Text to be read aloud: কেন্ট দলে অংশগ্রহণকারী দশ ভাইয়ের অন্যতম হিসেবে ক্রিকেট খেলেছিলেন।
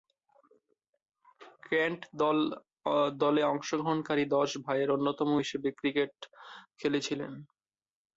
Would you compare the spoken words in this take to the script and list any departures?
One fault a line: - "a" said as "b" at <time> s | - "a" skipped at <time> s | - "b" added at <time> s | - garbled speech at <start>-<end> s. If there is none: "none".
none